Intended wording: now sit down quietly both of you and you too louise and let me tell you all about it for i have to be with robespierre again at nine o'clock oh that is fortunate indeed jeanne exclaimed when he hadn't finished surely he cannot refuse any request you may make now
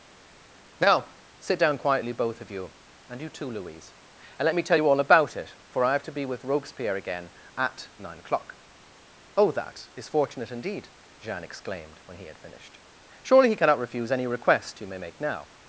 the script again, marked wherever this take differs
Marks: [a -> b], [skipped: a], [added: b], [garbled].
now sit down quietly both of you and you too louise and let me tell you all about it for i have to be with robespierre again at nine o'clock oh that is fortunate indeed jeanne exclaimed when he [hadn't -> had] finished surely he cannot refuse any request you may make now